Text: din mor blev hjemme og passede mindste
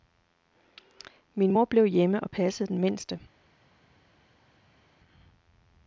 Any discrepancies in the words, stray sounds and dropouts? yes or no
yes